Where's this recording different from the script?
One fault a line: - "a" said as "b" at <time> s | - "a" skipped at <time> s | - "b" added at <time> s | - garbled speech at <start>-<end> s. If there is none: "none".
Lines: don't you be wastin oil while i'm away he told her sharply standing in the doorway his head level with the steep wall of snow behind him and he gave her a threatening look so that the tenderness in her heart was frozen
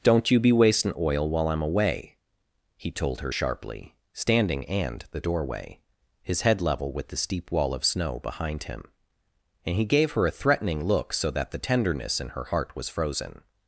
- "in" said as "and" at 4.7 s